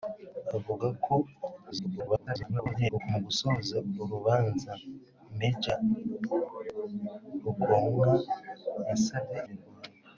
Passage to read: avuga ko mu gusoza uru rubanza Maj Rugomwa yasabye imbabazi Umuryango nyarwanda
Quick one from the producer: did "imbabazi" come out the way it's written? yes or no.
no